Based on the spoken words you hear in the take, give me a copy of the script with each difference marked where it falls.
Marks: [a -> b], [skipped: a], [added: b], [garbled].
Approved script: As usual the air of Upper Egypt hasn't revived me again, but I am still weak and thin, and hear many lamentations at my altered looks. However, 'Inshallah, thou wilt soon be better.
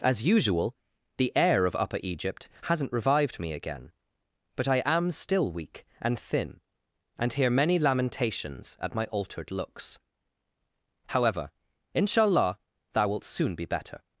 As usual the air of Upper Egypt hasn't revived me again, but I am still weak and thin, and hear many lamentations at my altered looks. However, 'Inshallah, thou wilt soon be better.